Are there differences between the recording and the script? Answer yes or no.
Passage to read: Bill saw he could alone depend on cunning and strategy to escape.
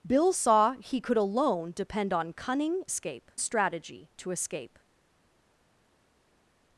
yes